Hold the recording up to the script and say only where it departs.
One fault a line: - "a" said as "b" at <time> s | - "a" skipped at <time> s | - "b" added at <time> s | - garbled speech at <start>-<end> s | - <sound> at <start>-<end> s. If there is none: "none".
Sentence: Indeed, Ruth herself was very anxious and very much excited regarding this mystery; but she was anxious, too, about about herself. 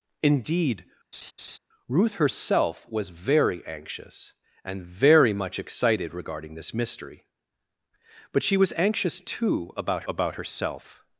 - laugh at 1.1-1.6 s